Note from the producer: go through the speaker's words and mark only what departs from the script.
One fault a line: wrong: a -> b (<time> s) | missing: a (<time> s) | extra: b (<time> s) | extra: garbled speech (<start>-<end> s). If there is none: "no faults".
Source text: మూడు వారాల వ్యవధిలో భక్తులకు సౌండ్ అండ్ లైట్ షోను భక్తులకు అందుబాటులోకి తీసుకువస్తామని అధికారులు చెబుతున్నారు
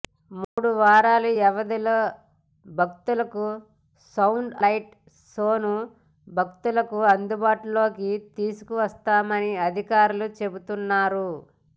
missing: అండ్ (4.5 s)